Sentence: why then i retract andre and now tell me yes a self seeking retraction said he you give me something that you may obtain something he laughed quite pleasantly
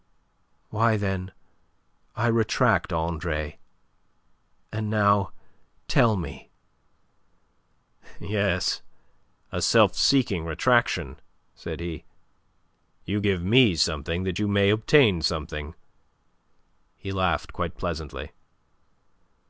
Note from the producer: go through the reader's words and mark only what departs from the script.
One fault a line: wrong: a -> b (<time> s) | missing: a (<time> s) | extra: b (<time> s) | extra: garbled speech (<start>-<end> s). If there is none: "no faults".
no faults